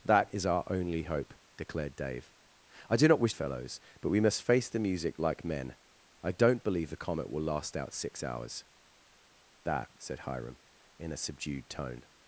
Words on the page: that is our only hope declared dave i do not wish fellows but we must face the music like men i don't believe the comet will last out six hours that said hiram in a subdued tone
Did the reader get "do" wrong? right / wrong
right